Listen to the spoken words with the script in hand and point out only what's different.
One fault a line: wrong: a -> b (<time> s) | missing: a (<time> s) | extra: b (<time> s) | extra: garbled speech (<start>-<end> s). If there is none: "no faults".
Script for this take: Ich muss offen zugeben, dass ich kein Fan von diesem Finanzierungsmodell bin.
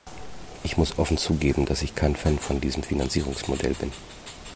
no faults